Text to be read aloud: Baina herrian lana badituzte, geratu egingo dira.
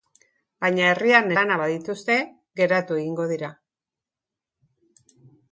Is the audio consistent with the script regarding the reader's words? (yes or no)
yes